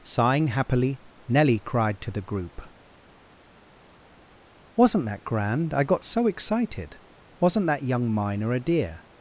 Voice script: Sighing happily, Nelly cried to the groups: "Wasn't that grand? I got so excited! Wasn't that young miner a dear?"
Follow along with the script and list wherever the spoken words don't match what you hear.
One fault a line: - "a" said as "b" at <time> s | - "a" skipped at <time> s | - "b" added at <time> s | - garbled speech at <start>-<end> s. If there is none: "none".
- "groups" said as "group" at 2.2 s